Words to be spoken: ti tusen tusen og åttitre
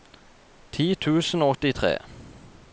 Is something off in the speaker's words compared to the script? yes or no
yes